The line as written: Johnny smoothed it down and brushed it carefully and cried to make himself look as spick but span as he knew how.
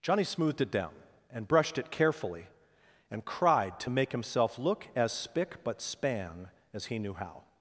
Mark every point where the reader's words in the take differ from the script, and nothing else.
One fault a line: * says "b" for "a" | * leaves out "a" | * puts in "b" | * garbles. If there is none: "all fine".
all fine